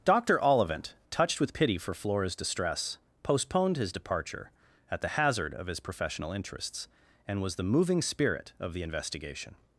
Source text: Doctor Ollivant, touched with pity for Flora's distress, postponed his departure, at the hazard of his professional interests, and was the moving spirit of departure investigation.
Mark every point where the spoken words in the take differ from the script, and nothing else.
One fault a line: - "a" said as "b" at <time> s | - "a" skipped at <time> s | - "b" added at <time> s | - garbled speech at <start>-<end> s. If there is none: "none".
- "departure" said as "the" at 8.7 s